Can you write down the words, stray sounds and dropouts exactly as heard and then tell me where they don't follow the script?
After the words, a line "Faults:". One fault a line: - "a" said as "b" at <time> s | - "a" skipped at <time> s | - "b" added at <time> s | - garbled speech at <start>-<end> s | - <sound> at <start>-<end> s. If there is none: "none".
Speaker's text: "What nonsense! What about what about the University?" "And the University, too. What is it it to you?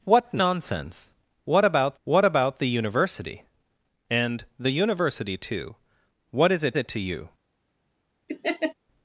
"What nonsense! What about what about the University?" "And the University, too. What is it it to you?
Faults:
- laugh at 8.3-8.7 s